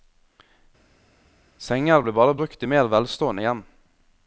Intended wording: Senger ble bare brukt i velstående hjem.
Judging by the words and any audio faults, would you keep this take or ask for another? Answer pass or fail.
fail